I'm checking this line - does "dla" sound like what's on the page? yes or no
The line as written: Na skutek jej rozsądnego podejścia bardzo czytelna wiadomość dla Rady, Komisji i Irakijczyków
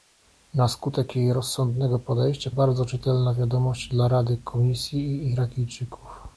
yes